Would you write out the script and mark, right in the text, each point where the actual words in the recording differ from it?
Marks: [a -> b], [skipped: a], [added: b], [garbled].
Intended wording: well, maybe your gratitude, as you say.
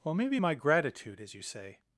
well, maybe [your -> my] gratitude, as you say.